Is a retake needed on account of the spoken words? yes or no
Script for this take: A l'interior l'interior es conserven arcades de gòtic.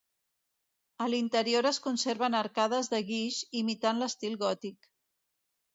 yes